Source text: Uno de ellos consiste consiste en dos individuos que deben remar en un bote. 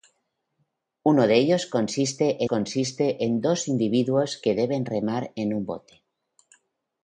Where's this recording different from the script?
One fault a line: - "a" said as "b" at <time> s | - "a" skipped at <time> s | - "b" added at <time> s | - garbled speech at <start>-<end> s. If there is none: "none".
none